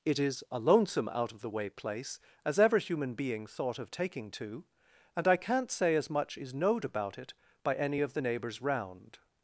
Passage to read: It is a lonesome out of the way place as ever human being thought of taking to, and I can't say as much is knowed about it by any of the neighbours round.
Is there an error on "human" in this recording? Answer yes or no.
no